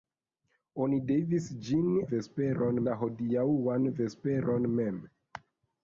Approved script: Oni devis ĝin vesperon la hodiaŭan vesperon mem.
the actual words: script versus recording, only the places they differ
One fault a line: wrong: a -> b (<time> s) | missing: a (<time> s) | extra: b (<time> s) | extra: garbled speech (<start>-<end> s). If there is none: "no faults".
no faults